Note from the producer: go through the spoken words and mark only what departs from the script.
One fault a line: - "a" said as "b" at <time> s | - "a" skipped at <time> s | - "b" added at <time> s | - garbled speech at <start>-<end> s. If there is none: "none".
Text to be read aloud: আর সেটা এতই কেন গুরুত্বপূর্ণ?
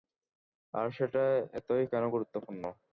none